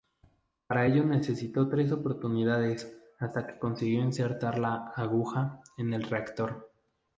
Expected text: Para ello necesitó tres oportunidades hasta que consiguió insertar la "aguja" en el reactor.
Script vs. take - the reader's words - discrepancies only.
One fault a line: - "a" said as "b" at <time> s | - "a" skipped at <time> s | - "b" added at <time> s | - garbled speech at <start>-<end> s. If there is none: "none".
none